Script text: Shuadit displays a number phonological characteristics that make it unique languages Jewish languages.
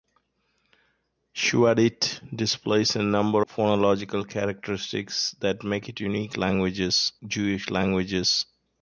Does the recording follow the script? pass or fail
pass